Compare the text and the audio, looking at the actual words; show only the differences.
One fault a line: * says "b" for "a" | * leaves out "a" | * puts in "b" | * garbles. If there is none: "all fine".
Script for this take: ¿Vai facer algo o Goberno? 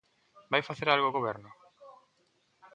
all fine